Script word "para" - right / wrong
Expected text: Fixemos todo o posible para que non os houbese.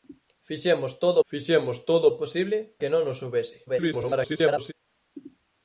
wrong